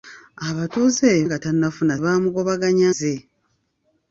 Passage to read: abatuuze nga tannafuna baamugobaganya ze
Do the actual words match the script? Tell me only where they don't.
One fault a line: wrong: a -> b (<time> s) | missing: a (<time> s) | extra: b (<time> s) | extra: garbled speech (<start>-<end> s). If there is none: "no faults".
no faults